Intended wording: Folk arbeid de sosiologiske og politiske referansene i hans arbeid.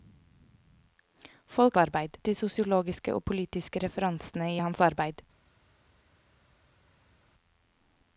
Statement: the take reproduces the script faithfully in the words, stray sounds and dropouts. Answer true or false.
true